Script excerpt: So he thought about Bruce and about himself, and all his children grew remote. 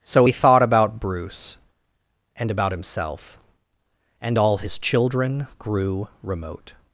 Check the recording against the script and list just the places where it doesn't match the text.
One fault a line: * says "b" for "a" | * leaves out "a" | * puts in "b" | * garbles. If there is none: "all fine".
all fine